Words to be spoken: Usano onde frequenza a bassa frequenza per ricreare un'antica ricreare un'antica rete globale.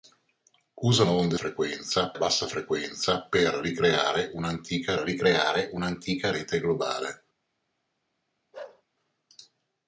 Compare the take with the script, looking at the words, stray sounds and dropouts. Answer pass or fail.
fail